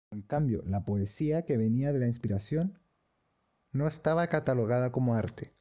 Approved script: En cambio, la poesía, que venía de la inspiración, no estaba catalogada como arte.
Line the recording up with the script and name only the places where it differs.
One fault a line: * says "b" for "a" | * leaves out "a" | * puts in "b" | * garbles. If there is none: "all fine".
all fine